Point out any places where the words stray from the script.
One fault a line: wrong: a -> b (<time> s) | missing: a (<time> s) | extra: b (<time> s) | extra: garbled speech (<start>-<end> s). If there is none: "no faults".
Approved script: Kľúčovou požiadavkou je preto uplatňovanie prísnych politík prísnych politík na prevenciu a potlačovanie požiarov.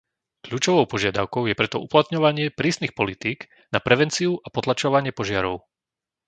missing: prísnych politík (3.5 s)